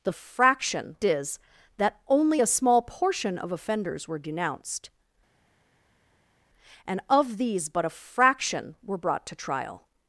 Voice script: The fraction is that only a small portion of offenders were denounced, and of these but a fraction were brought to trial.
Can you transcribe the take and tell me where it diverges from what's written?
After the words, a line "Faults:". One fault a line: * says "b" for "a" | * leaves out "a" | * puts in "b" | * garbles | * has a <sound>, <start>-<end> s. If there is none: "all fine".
The fraction is that only a small portion of offenders were denounced, and of these but a fraction were brought to trial.
Faults:
all fine